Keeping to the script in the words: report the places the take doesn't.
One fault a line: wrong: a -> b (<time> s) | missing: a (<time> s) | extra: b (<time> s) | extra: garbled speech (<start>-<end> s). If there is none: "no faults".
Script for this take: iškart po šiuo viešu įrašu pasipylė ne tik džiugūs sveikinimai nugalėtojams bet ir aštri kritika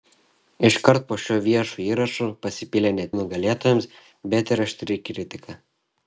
missing: tik džiugūs sveikinimai (3.0 s)